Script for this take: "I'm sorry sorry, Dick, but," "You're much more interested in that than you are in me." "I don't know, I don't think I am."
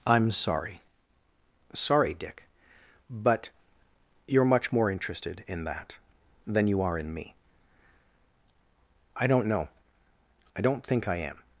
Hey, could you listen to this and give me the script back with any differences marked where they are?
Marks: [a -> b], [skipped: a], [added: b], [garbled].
"I'm sorry sorry, Dick, but," "You're much more interested in that than you are in me." "I don't know, I don't think I am."